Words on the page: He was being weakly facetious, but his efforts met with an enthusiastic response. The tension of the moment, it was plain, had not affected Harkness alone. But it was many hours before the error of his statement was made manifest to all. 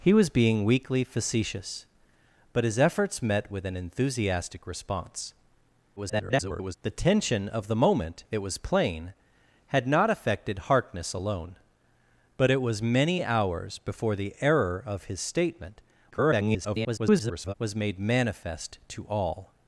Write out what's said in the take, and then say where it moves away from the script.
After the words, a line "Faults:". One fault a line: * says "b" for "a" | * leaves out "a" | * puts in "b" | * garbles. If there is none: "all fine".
He was being weakly facetious, but his efforts met with an enthusiastic response. [garbled] The tension of the moment, it was plain, had not affected Harkness alone. But it was many hours before the error of his statement [garbled] was made manifest to all.
Faults:
* garbles
* garbles